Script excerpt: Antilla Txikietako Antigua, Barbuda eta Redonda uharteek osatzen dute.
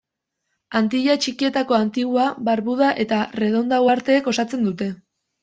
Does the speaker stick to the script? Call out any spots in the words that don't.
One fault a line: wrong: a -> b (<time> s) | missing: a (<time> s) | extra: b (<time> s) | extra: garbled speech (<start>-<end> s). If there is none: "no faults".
no faults